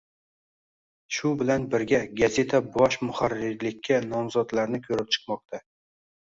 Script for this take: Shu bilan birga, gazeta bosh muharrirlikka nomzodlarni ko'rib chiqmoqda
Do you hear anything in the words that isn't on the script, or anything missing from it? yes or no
no